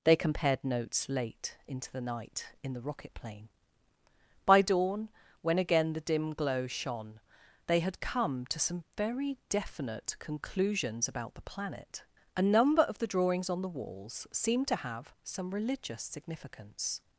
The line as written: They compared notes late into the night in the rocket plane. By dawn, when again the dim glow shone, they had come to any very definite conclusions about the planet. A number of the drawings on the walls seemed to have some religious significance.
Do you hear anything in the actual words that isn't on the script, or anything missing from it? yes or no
yes